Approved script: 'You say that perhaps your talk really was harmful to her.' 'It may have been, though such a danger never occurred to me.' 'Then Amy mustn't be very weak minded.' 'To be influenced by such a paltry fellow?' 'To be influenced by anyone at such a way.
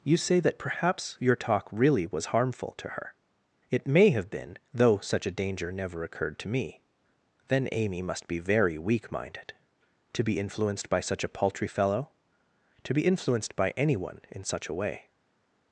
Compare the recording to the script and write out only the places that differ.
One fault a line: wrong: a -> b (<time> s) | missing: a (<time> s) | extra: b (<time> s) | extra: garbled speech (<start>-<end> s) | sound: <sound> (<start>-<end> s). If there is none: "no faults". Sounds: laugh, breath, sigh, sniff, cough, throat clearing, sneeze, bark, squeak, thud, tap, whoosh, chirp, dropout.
wrong: mustn't -> must (8.0 s)
wrong: at -> in (14.3 s)